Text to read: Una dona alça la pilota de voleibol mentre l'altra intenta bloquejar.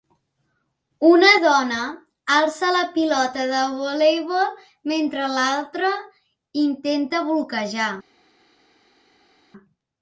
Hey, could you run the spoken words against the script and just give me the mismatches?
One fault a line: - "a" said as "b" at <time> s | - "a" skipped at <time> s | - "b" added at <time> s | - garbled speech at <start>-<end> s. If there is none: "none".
none